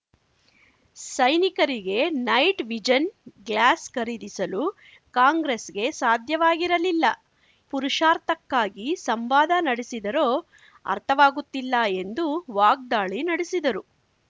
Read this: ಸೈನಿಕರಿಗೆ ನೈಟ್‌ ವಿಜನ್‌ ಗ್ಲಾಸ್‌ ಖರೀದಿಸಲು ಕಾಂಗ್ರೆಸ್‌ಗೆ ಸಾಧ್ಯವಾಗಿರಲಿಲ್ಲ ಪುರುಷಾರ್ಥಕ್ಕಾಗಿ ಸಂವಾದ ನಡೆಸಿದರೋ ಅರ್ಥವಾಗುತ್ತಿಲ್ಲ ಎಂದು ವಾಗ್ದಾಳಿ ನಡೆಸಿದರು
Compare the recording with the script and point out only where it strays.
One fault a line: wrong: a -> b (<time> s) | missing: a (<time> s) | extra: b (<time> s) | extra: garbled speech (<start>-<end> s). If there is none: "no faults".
no faults